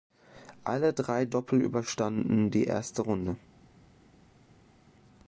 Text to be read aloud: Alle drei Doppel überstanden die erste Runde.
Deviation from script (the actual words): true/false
false